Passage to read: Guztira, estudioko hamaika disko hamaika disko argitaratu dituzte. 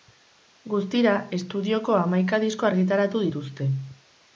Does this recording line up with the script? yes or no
no